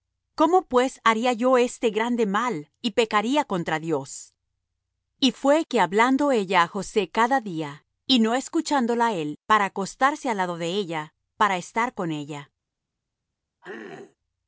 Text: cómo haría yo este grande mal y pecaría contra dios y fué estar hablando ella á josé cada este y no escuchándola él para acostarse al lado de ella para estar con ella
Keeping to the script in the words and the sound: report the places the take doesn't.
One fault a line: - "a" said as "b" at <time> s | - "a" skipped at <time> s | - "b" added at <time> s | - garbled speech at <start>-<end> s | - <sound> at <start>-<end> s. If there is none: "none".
- "pues" added at 0.7 s
- "estar" said as "que" at 5.7 s
- "este" said as "día" at 7.4 s
- throat clearing at 13.6-14.2 s